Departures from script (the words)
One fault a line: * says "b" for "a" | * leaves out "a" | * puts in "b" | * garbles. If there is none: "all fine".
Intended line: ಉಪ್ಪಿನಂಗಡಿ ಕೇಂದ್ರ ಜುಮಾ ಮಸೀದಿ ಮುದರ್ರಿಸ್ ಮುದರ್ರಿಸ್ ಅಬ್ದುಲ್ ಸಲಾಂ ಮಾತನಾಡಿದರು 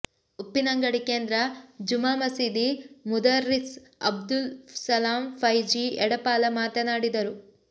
* leaves out "ಮುದರ್ರಿಸ್"
* puts in "ಫೈಝಿ ಎಡಪಾಲ"